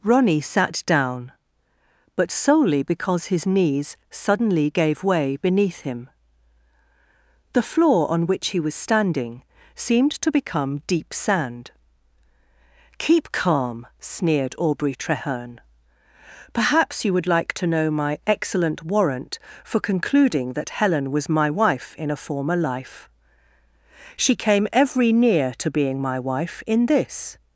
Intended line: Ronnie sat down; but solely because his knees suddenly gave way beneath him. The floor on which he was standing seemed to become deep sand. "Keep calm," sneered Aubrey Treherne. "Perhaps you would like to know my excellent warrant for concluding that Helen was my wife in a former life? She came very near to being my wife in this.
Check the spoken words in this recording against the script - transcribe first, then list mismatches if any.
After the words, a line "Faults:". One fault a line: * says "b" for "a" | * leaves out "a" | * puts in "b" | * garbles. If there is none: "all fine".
Ronnie sat down; but solely because his knees suddenly gave way beneath him. The floor on which he was standing seemed to become deep sand. "Keep calm," sneered Aubrey Treherne. "Perhaps you would like to know my excellent warrant for concluding that Helen was my wife in a former life? She came every near to being my wife in this.
Faults:
* says "every" for "very"